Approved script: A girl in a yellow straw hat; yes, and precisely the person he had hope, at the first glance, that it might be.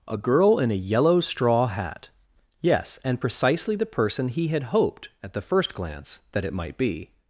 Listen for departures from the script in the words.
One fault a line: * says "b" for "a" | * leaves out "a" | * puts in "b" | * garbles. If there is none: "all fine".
* says "hoped" for "hope"